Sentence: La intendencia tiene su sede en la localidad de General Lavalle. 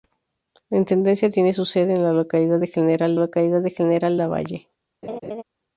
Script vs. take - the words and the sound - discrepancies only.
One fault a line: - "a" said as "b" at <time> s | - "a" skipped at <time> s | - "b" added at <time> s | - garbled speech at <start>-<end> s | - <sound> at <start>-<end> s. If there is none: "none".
- "localidad de General" added at 3.1 s
- laugh at 5.0-5.4 s